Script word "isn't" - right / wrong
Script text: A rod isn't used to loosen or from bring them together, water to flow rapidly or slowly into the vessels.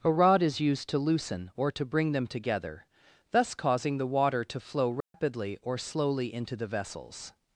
wrong